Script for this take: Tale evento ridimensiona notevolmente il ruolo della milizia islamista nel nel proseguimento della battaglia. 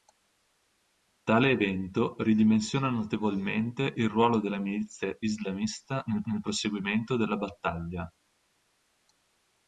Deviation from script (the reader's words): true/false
false